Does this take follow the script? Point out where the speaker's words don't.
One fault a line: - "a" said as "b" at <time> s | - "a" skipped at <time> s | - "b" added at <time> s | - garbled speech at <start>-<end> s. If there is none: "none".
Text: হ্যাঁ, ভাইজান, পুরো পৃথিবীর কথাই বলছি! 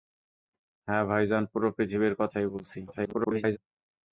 - garbled speech at 2.9-3.6 s